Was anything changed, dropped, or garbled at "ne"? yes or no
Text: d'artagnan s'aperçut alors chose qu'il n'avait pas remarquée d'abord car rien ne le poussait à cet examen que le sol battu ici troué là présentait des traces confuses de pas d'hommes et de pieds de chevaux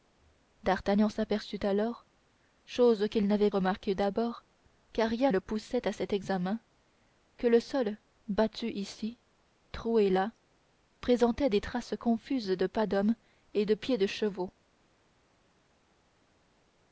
yes